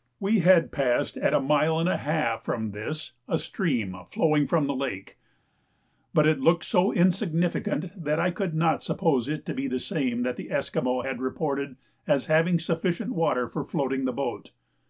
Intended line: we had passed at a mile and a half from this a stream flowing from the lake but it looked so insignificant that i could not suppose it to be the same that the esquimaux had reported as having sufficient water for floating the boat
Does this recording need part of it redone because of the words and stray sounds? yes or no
no